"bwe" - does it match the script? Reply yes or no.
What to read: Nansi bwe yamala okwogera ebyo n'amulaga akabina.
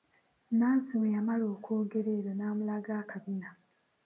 yes